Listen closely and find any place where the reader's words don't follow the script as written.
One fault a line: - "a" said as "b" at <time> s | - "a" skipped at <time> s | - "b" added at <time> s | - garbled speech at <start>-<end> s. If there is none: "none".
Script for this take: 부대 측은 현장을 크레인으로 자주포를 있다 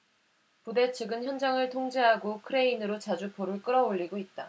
- "통제하고" added at 1.7 s
- "끌어올리고" added at 3.6 s